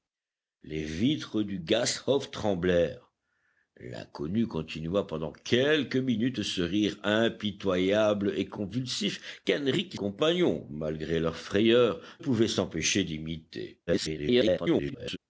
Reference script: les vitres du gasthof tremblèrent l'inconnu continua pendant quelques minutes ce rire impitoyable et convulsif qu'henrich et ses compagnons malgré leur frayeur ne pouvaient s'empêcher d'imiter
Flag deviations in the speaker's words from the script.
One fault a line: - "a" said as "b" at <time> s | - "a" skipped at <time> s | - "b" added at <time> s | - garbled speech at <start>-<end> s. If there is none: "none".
- "ses" skipped at 10.0 s
- "ne" skipped at 12.0 s
- garbled speech at 13.9-15.2 s